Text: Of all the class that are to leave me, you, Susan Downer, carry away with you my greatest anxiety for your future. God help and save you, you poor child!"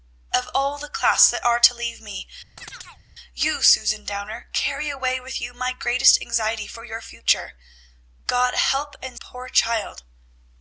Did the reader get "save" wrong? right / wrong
wrong